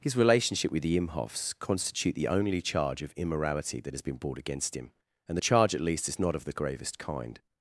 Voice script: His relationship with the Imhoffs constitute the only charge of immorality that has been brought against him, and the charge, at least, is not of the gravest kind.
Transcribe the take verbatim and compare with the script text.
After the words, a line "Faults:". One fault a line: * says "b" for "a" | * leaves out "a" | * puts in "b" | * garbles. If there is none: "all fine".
His relationship with the Imhoffs constitute the only charge of immorality that has been brought against him, and the charge, at least, is not of the gravest kind.
Faults:
all fine